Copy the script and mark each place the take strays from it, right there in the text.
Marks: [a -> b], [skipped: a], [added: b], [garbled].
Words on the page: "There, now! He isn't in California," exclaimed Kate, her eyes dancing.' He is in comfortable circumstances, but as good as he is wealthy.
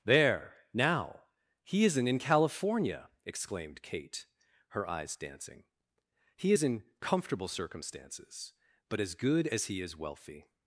"There, now! He isn't in California," exclaimed Kate, her eyes dancing.' He is in comfortable circumstances, but as good as he is wealthy.